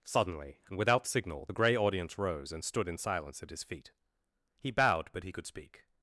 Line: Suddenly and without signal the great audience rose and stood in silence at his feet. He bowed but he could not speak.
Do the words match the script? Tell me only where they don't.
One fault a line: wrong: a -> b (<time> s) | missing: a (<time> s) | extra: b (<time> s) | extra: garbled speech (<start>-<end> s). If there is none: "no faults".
wrong: great -> grey (1.5 s)
missing: not (5.5 s)